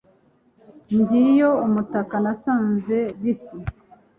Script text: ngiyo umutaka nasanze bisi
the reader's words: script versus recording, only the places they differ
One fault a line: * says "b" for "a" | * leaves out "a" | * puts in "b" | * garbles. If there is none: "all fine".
all fine